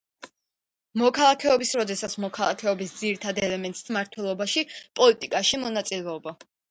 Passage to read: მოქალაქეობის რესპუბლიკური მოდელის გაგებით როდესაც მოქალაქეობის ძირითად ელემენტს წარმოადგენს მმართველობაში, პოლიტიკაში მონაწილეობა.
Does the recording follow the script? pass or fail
fail